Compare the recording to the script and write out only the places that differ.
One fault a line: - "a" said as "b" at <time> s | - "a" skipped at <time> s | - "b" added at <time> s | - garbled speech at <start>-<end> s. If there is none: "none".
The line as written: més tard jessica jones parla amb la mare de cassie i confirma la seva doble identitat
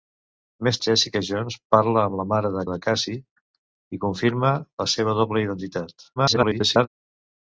- "tard" skipped at 0.8 s
- "de" added at 2.7 s
- garbled speech at 6.2-6.9 s